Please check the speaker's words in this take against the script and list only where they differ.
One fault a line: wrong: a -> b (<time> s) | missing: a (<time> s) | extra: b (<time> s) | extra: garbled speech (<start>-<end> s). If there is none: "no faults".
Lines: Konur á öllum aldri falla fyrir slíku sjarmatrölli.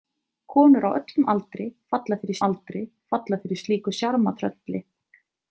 extra: aldri falla fyrir (2.5 s)